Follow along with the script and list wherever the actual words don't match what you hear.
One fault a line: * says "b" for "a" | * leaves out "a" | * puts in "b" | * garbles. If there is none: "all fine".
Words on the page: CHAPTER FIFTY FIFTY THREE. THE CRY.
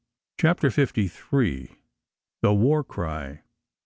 * leaves out "FIFTY"
* puts in "WAR"